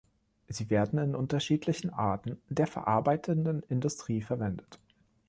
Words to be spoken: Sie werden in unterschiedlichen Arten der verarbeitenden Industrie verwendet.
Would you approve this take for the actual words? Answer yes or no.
yes